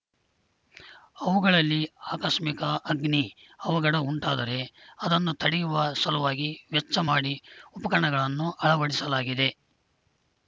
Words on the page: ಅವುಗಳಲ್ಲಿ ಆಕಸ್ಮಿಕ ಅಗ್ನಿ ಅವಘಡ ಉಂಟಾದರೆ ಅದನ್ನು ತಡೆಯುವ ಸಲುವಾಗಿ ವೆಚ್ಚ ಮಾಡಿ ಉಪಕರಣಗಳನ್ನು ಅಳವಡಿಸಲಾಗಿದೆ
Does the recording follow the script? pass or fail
pass